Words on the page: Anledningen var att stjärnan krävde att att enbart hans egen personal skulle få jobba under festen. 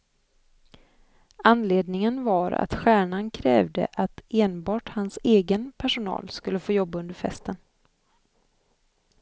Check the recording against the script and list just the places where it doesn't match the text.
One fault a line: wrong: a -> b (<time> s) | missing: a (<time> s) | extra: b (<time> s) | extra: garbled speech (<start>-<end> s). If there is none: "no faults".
missing: att (4.2 s)